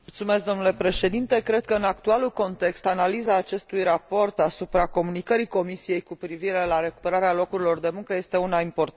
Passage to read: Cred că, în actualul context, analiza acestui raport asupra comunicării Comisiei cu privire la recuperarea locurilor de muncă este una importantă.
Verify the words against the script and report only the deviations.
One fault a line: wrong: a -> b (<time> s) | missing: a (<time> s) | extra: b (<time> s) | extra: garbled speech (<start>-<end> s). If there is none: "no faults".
no faults